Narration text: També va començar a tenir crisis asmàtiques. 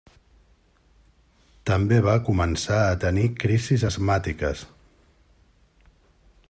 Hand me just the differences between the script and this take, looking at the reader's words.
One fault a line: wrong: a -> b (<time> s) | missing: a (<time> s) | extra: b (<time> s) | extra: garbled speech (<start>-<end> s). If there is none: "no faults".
no faults